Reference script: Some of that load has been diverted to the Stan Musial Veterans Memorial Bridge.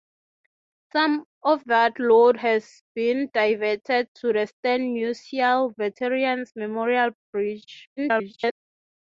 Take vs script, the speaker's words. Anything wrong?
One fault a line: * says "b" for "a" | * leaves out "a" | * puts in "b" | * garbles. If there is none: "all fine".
* garbles